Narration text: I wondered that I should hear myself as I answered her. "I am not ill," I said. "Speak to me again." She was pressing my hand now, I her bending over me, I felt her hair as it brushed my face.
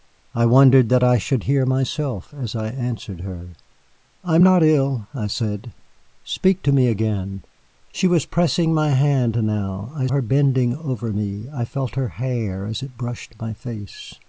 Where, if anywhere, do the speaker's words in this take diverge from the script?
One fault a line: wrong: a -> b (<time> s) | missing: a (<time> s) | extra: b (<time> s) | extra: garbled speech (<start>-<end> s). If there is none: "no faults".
no faults